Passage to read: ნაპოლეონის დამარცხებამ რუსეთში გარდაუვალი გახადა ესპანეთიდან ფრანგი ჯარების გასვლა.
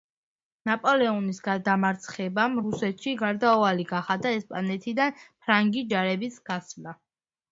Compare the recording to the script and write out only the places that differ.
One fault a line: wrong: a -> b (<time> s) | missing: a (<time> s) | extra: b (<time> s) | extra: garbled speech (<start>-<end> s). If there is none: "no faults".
no faults